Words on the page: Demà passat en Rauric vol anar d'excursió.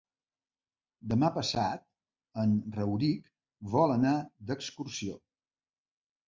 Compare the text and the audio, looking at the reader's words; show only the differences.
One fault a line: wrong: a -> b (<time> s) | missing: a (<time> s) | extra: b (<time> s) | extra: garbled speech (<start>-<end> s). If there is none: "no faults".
no faults